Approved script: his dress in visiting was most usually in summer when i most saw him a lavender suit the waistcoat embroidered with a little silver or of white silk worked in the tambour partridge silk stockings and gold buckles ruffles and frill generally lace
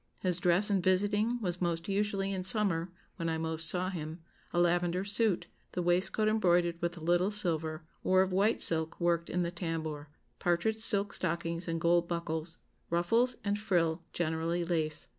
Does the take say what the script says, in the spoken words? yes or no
yes